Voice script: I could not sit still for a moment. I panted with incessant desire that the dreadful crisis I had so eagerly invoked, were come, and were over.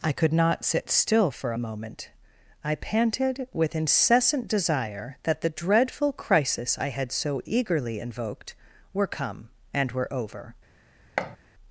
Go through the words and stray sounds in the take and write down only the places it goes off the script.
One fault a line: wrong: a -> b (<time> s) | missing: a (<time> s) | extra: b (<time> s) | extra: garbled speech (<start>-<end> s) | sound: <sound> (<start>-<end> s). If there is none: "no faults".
sound: thud (11.2-11.4 s)